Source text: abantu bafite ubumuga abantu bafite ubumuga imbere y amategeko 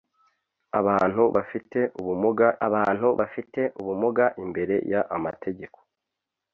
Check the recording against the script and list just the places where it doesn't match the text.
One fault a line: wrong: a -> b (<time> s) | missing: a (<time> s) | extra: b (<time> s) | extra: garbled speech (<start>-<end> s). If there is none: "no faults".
no faults